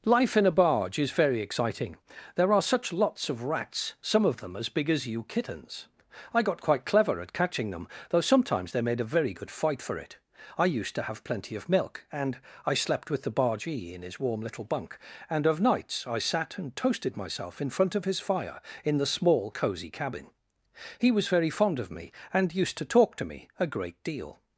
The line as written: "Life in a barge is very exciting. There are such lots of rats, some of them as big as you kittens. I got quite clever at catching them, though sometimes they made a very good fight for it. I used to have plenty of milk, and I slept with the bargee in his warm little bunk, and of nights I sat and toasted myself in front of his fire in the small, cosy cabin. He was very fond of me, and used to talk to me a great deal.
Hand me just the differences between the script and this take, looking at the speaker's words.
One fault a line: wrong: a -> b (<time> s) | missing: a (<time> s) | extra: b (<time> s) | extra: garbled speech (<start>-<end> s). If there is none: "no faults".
no faults